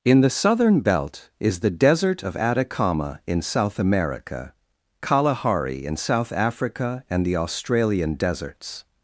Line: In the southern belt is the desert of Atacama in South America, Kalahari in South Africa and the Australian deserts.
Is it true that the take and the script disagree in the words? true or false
false